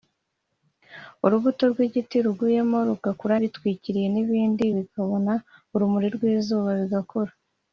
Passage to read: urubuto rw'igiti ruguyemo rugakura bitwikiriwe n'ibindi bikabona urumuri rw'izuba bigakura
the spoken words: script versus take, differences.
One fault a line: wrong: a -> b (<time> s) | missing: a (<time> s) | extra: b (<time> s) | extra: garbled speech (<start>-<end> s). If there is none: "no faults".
no faults